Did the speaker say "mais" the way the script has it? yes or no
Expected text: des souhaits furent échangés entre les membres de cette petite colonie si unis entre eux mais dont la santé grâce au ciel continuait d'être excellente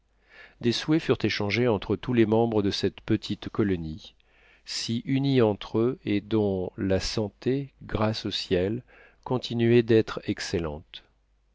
no